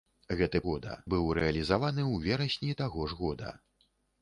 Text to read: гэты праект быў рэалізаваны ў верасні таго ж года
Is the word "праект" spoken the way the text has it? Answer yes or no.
no